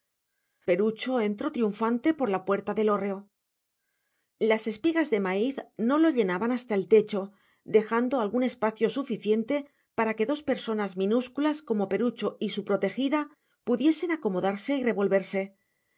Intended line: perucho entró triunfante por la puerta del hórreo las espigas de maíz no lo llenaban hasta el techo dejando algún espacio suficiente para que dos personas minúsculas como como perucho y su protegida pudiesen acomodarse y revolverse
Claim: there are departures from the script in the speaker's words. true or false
true